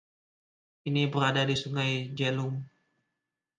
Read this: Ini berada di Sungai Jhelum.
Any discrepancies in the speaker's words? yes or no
no